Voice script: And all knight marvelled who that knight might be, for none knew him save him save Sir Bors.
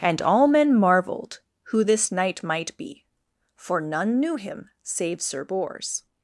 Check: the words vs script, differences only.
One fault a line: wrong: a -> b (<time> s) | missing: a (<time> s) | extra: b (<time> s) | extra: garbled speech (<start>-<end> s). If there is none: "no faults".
wrong: knight -> men (0.5 s)
wrong: that -> this (1.8 s)
missing: him save (5.2 s)